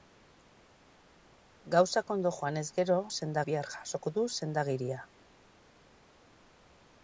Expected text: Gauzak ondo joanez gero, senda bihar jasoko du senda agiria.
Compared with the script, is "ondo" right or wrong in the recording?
right